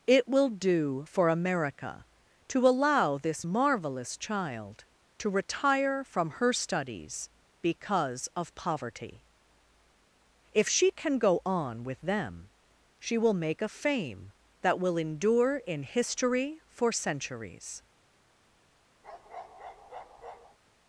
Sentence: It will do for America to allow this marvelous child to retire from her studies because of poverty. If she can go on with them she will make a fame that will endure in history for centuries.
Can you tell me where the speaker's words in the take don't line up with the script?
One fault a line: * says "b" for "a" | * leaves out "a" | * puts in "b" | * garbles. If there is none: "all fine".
all fine